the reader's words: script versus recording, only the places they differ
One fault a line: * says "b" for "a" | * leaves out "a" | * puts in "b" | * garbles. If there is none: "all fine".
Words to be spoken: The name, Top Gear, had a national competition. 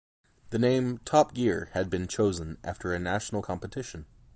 * puts in "been chosen after"